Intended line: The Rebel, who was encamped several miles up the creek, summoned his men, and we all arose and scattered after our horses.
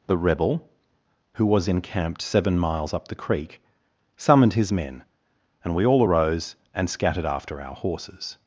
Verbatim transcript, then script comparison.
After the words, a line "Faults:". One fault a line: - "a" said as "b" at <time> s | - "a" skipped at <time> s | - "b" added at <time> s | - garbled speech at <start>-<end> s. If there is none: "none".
The Rebel, who was encamped seven miles up the creek, summoned his men, and we all arose and scattered after our horses.
Faults:
- "several" said as "seven" at 2.2 s